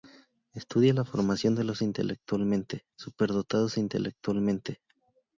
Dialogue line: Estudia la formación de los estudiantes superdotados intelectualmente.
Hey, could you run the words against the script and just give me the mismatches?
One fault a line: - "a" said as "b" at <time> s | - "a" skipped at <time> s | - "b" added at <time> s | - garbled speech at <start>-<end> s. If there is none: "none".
- "estudiantes" said as "intelectualmente" at 1.8 s